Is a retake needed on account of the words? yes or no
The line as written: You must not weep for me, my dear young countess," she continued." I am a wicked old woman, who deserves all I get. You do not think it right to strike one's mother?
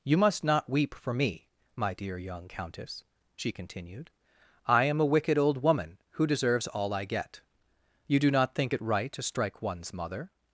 no